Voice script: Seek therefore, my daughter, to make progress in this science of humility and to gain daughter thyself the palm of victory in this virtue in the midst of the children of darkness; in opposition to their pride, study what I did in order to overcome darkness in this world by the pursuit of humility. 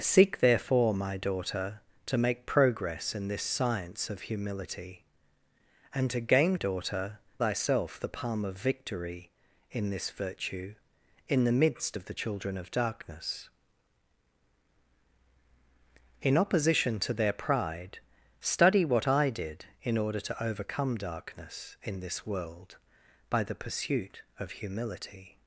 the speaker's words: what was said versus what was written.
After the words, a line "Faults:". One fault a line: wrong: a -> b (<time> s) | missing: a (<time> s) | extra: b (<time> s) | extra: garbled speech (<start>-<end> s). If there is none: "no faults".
Seek therefore, my daughter, to make progress in this science of humility and to gain daughter thyself the palm of victory in this virtue in the midst of the children of darkness; in opposition to their pride, study what I did in order to overcome darkness in this world by the pursuit of humility.
Faults:
no faults